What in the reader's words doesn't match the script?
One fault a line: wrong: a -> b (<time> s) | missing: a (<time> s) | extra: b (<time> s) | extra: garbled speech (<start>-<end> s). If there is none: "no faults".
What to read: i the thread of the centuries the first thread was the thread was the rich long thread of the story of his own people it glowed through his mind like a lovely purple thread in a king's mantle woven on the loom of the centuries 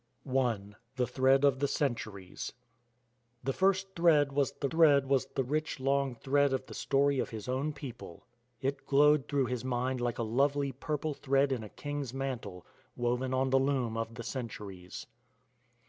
no faults